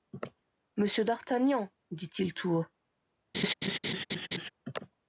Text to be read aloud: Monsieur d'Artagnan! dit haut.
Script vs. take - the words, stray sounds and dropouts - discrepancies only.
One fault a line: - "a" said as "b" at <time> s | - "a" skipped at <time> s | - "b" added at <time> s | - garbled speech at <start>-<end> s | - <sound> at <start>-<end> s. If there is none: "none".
- "il tout" added at 2.2 s
- laugh at 3.3-4.5 s